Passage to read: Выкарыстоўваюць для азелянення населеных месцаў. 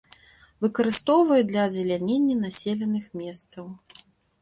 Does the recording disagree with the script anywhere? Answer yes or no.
no